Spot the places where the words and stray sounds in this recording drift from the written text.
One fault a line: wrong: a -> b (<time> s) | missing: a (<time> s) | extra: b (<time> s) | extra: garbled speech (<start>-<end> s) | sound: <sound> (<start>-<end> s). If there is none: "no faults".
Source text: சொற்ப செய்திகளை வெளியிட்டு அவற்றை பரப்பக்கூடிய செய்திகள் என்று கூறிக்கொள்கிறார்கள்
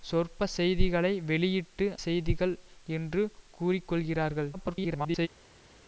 missing: அவற்றை பரப்பக்கூடிய (1.9 s)
extra: garbled speech (4.5-5.3 s)